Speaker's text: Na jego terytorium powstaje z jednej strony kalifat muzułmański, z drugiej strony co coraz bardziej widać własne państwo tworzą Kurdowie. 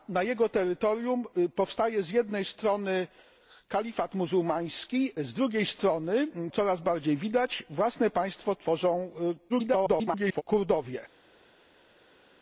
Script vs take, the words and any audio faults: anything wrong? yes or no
yes